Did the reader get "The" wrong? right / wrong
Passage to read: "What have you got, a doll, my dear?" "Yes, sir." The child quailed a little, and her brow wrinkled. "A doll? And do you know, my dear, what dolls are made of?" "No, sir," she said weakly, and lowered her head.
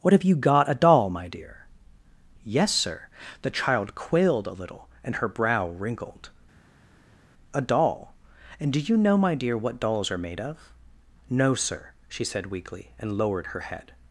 right